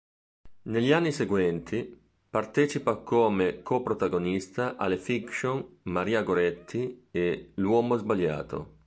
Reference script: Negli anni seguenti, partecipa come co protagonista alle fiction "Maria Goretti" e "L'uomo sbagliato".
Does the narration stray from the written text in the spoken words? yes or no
no